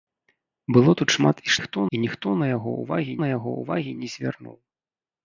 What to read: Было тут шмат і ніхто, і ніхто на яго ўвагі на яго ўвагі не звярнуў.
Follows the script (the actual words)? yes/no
yes